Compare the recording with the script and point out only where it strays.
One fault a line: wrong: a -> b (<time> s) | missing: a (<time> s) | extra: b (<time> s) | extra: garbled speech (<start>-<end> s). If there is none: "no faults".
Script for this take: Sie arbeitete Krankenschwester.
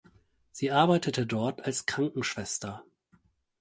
extra: dort als (1.3 s)